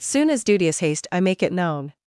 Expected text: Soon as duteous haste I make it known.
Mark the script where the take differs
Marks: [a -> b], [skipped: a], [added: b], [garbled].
Soon as duteous haste I make it known.